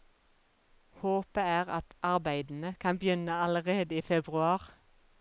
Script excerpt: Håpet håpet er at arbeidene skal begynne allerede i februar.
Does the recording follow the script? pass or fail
fail